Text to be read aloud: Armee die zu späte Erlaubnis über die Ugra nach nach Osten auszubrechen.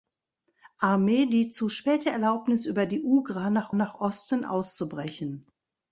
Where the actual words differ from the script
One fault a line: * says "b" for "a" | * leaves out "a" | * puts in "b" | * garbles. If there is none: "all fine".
all fine